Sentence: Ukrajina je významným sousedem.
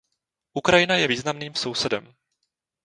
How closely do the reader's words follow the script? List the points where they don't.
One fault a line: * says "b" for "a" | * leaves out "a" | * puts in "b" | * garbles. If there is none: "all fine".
all fine